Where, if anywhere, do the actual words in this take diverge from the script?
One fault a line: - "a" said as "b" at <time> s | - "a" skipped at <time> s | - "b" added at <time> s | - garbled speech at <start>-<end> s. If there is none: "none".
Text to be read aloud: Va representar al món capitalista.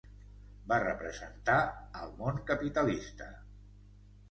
none